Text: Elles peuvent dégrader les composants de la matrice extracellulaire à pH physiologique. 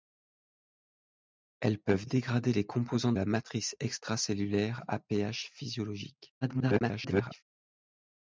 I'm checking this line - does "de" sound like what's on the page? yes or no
no